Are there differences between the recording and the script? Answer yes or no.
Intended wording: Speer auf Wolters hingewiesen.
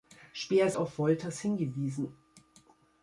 no